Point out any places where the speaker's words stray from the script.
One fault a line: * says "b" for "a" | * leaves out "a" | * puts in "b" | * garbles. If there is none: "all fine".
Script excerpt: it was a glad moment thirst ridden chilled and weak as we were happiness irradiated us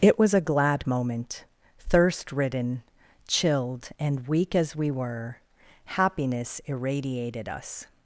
all fine